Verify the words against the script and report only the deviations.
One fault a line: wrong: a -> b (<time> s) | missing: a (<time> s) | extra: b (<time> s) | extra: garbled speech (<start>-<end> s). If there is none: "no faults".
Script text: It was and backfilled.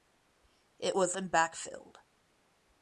no faults